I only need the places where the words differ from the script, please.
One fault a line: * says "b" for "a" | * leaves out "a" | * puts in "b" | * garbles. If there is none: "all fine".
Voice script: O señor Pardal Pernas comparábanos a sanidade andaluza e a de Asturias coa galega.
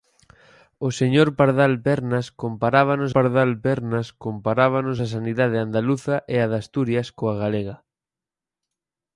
* puts in "Pardal Pernas comparábanos"